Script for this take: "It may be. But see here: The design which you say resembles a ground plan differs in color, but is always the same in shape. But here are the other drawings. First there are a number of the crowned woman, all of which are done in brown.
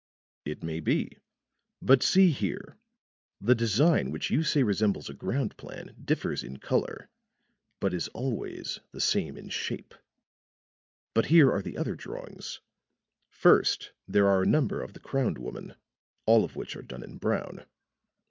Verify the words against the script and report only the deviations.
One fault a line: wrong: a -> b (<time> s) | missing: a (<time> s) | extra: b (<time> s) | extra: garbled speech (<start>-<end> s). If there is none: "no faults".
no faults